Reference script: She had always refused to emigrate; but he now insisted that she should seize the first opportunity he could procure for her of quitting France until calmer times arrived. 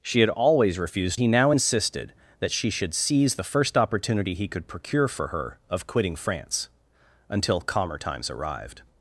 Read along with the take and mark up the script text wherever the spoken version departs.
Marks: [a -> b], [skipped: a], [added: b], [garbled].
She had always refused [skipped: to emigrate; but] he now insisted that she should seize the first opportunity he could procure for her of quitting France until calmer times arrived.